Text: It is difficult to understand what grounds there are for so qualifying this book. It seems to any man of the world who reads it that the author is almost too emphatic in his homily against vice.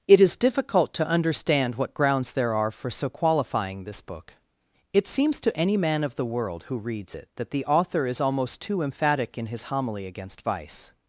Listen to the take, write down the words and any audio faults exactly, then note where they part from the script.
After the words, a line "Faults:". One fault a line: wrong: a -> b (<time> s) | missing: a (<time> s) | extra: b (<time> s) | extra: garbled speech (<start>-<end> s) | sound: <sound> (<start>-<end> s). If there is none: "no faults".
It is difficult to understand what grounds there are for so qualifying this book. It seems to any man of the world who reads it that the author is almost too emphatic in his homily against vice.
Faults:
no faults